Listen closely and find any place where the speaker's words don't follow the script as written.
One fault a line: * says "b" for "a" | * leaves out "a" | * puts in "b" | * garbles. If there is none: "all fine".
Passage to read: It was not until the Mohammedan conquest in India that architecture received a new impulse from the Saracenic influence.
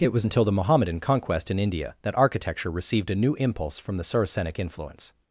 * leaves out "not"